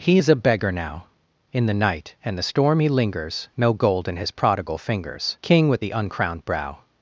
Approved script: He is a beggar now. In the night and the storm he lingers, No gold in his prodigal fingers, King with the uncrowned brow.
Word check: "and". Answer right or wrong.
right